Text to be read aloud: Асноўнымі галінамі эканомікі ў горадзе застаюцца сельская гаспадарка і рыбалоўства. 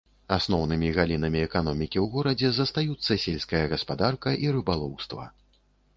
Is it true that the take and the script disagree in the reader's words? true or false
false